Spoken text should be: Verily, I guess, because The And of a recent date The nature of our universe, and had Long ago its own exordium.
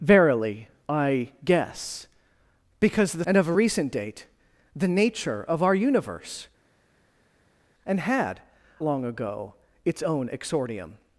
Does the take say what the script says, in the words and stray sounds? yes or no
yes